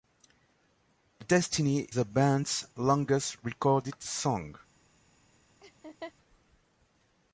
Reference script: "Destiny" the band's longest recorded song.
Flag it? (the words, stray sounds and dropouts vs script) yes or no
yes